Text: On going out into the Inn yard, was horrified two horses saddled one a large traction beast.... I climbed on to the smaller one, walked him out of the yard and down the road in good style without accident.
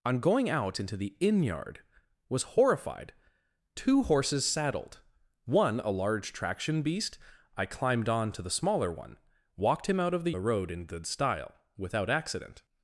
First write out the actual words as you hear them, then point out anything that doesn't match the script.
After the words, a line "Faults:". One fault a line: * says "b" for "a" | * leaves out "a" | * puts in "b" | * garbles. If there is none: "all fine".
On going out into the Inn yard, was horrified two horses saddled one a large traction beast.... I climbed on to the smaller one, walked him out of the the road in good style without accident.
Faults:
* leaves out "yard and down"